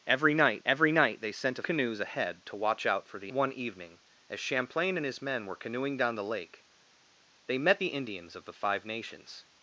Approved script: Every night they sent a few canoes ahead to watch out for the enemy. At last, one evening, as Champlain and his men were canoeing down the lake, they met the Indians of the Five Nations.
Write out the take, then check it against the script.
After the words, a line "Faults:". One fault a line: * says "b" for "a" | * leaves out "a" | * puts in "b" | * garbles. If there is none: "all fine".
Every night every night they sent a canoes ahead to watch out for the one evening, as Champlain and his men were canoeing down the lake, they met the Indians of the Five Nations.
Faults:
* puts in "every night"
* leaves out "few"
* leaves out "enemy At last"